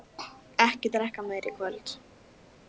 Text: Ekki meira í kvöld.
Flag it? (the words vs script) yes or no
yes